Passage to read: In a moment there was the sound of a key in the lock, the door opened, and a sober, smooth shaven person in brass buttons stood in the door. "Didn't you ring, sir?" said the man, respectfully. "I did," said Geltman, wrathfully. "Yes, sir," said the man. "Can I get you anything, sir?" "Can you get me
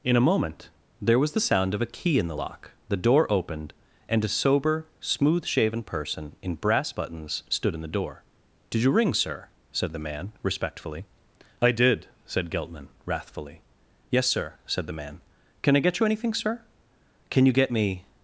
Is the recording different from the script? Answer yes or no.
yes